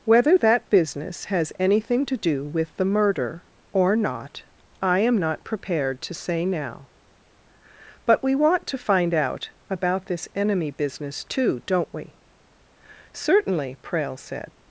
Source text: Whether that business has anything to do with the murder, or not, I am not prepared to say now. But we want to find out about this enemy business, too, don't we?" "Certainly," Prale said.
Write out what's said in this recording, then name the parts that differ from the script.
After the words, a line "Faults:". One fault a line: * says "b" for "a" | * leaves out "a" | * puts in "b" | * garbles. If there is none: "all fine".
Whether that business has anything to do with the murder, or not, I am not prepared to say now. But we want to find out about this enemy business, too, don't we?" "Certainly," Prale said.
Faults:
all fine